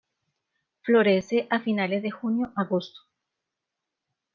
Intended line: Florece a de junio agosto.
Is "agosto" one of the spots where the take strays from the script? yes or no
no